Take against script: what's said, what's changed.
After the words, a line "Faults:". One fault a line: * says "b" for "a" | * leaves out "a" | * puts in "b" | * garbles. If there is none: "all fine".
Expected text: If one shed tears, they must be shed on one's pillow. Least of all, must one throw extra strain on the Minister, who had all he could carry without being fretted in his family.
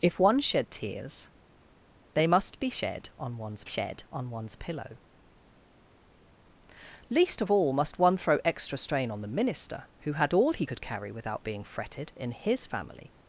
If one shed tears, they must be shed on one's shed on one's pillow. Least of all, must one throw extra strain on the Minister, who had all he could carry without being fretted in his family.
Faults:
* puts in "shed on one's"